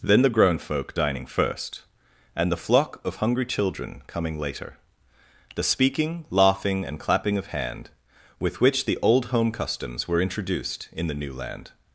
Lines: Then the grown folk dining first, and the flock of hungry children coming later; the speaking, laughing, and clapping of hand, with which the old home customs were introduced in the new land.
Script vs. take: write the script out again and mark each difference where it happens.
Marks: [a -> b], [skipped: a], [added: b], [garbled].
Then the grown folk dining first, and the flock of hungry children coming later; the speaking, laughing, and clapping of hand, with which the old home customs were introduced in the new land.